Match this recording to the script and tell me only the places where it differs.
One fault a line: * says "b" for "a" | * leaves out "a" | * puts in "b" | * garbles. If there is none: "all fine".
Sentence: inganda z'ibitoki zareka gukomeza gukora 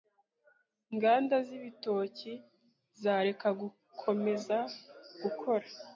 all fine